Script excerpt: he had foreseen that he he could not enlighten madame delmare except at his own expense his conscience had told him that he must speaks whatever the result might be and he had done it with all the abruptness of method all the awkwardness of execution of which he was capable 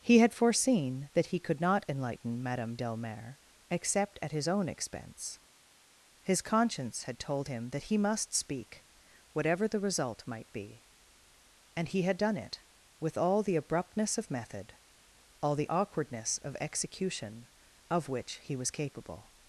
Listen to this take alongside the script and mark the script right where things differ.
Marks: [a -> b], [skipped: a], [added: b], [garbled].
he had foreseen that he [skipped: he] could not enlighten madame delmare except at his own expense his conscience had told him that he must [speaks -> speak] whatever the result might be and he had done it with all the abruptness of method all the awkwardness of execution of which he was capable